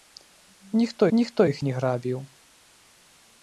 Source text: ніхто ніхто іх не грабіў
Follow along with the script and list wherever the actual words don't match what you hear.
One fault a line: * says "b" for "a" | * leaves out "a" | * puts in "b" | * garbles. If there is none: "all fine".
all fine